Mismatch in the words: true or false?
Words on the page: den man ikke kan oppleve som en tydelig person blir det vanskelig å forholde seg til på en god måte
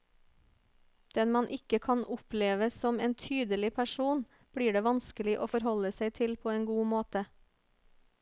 false